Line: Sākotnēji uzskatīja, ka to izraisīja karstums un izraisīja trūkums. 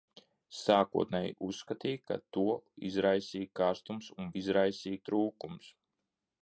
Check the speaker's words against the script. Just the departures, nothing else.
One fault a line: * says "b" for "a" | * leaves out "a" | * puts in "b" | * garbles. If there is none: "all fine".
all fine